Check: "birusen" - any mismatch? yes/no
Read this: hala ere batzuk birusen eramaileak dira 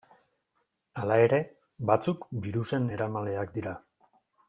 no